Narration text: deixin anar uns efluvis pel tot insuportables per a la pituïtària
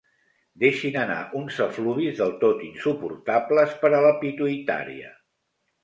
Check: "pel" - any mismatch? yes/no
yes